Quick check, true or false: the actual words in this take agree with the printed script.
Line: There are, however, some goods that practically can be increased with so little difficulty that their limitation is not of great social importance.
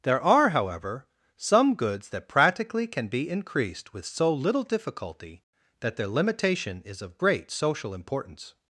false